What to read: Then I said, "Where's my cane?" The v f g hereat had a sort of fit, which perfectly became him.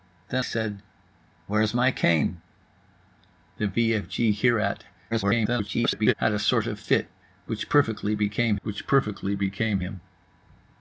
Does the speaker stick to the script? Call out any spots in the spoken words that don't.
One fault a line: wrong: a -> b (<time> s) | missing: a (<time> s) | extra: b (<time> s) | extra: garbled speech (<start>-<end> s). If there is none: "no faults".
missing: I (0.5 s)
extra: garbled speech (5.1-6.1 s)
extra: which perfectly became (8.6 s)